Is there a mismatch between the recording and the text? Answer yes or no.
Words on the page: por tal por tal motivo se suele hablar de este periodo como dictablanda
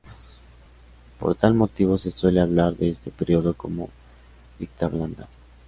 yes